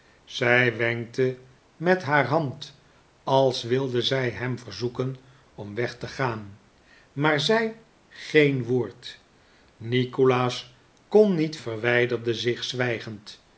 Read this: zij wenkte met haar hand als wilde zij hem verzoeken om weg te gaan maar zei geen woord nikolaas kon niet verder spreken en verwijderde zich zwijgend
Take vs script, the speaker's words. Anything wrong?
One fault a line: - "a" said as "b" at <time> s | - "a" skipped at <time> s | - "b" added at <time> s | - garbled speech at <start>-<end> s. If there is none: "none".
- "verder spreken en" skipped at 11.6 s